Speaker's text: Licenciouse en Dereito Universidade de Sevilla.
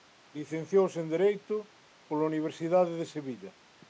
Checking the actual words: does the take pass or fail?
fail